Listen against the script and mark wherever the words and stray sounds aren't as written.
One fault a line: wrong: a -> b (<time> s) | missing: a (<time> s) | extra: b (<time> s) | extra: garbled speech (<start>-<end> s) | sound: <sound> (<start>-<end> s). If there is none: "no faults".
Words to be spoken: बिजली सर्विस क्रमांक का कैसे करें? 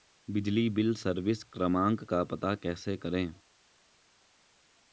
extra: बिल (0.7 s)
extra: पता (2.2 s)